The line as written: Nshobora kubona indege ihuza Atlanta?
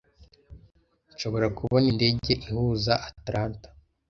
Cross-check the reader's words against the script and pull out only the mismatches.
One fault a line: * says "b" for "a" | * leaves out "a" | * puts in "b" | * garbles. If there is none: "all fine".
all fine